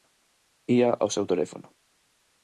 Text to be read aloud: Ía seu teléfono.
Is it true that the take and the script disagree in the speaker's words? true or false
true